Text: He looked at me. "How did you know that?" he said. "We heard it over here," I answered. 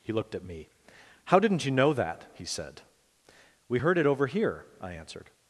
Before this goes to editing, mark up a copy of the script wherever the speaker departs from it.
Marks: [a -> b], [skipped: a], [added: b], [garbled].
He looked at me. "How [did -> didn't] you know that?" he said. "We heard it over here," I answered.